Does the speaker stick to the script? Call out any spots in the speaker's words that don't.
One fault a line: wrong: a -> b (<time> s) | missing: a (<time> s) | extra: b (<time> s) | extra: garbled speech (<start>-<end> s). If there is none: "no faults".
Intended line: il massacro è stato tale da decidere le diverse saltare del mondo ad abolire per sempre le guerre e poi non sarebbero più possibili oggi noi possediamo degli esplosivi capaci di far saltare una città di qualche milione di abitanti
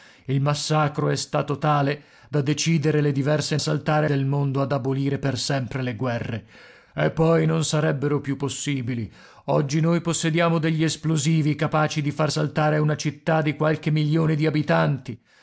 no faults